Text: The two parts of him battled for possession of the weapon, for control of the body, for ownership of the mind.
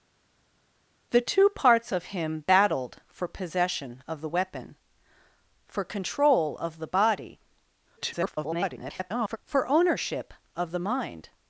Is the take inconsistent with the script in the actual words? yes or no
yes